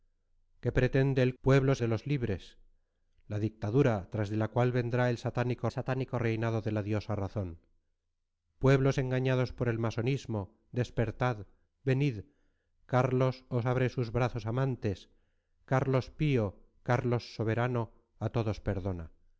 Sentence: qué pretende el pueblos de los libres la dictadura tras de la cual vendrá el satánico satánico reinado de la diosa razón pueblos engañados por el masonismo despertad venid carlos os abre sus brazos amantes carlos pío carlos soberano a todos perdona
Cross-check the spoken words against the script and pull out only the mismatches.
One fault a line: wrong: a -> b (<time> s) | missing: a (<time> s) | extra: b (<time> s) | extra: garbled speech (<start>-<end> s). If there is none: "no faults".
no faults